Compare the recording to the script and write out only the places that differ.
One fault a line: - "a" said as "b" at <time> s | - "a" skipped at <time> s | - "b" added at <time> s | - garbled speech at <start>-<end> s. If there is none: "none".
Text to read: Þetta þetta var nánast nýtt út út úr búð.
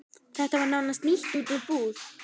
- "þetta" skipped at 0.6 s
- "út" skipped at 1.5 s